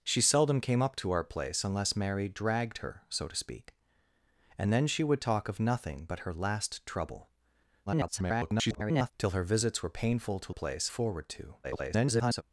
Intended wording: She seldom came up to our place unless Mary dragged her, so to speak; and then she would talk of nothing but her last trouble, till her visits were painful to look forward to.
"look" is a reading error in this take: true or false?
true